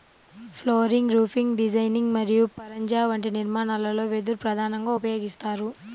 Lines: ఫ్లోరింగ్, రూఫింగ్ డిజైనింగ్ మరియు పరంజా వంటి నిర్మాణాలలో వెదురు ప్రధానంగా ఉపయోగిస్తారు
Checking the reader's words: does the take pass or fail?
pass